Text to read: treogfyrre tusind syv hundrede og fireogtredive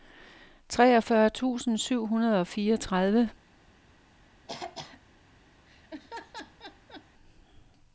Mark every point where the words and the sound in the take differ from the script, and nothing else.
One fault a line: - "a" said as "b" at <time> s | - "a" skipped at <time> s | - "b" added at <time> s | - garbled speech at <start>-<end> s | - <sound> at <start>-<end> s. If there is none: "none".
- throat clearing at 4.5-5.0 s
- laugh at 5.7-7.1 s